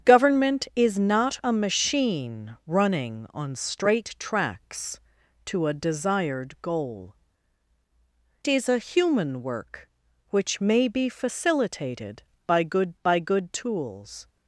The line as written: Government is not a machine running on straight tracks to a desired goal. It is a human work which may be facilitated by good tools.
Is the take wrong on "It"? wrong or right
wrong